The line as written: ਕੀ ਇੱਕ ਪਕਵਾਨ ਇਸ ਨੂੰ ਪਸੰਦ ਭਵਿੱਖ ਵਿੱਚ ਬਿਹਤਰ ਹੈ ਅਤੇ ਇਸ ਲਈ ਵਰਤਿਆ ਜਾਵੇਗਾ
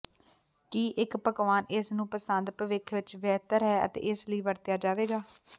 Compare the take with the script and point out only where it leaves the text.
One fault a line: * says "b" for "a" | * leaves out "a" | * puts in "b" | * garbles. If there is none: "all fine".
all fine